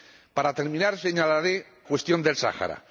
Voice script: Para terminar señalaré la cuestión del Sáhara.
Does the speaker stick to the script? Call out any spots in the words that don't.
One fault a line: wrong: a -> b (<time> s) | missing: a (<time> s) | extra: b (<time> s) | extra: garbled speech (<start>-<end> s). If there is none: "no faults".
missing: la (1.6 s)